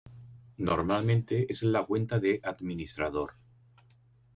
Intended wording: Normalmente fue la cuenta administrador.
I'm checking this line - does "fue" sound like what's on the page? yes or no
no